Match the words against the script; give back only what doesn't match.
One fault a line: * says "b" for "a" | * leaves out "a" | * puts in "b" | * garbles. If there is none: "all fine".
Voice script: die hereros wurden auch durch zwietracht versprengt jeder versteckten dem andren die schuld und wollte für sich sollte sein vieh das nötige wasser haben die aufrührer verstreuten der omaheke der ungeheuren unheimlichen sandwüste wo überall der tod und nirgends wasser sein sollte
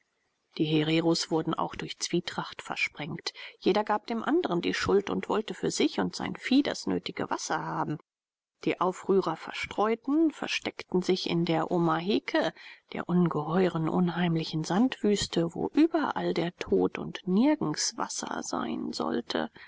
* says "gab" for "versteckten"
* says "und" for "sollte"
* puts in "versteckten sich in"